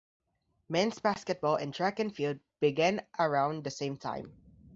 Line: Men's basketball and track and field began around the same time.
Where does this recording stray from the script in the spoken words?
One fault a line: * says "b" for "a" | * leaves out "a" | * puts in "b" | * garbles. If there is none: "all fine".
all fine